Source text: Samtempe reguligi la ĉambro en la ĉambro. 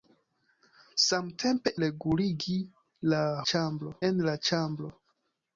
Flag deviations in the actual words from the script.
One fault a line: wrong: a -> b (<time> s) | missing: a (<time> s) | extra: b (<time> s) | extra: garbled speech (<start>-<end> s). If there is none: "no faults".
no faults